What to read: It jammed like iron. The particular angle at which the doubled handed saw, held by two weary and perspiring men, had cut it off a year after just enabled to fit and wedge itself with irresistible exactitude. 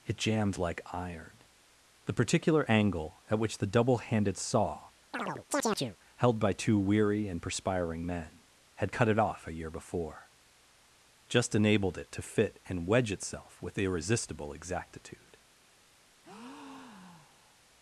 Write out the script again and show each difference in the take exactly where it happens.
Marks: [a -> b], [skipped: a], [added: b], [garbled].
It jammed like iron. The particular angle at which the [doubled -> double] handed saw, held by two weary and perspiring men, had cut it off a year [after -> before] just enabled [added: it] to fit and wedge itself with irresistible exactitude.